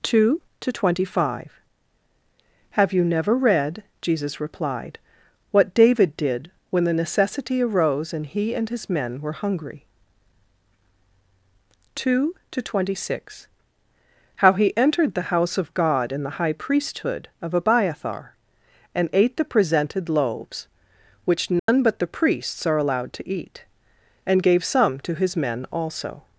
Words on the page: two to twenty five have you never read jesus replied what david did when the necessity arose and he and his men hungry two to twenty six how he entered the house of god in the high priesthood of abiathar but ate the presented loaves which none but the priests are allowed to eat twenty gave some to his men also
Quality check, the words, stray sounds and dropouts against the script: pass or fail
fail